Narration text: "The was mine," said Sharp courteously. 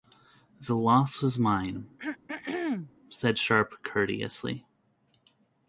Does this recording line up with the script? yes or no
no